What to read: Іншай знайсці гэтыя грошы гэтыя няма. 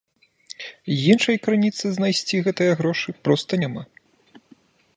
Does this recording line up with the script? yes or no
no